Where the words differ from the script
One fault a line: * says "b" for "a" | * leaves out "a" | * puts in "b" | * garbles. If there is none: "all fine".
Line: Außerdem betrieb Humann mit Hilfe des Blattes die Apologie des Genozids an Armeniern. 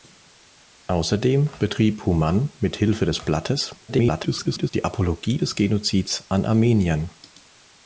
* garbles